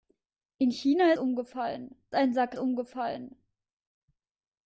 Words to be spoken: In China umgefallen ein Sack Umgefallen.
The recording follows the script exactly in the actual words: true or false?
true